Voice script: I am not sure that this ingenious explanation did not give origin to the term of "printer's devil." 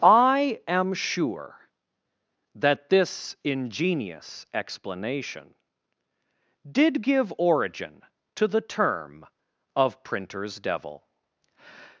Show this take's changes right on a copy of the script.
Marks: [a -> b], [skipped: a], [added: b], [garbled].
I am [skipped: not] sure that this ingenious explanation did [skipped: not] give origin to the term of "printer's devil."